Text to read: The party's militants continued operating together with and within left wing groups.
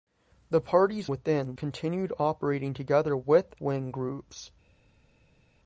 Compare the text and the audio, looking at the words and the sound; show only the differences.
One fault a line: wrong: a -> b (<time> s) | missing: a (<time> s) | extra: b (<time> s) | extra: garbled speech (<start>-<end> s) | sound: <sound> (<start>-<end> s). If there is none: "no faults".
wrong: militants -> within (1.1 s)
missing: and within left (3.5 s)